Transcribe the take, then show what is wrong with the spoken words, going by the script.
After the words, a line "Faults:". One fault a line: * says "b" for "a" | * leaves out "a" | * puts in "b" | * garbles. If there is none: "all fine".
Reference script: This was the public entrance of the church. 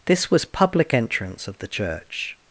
This was public entrance of the church.
Faults:
* leaves out "the"